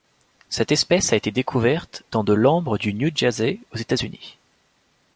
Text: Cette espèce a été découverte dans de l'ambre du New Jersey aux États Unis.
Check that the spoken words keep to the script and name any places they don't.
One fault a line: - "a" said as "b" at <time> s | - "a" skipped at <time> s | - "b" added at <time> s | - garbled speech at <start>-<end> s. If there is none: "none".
none